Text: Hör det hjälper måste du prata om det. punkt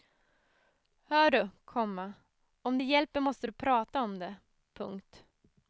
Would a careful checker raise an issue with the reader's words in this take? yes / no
yes